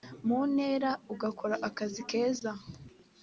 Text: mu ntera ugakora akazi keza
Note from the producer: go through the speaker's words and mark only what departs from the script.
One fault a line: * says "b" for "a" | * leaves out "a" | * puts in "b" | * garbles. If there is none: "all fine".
all fine